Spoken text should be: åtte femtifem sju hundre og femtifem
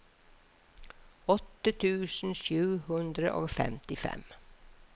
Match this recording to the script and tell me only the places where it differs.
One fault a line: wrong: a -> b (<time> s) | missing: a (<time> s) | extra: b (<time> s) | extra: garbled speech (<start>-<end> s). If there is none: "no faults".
wrong: femtifem -> tusen (1.8 s)